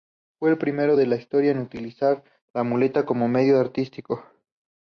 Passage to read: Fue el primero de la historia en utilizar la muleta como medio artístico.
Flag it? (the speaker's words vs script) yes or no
no